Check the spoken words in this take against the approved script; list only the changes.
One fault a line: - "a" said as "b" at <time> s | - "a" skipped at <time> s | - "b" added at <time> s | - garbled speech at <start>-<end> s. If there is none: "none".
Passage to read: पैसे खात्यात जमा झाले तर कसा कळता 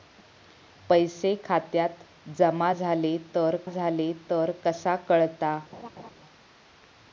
- "झाले तर" added at 3.7 s